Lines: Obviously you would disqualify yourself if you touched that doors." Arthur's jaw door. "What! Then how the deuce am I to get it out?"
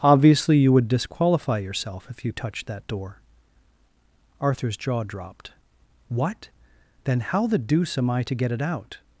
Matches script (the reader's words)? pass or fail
fail